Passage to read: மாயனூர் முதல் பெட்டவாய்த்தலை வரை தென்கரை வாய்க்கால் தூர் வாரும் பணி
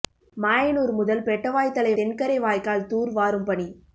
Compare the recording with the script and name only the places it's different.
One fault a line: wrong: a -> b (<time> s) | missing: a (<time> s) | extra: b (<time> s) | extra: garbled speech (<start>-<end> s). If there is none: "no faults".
missing: வரை (1.9 s)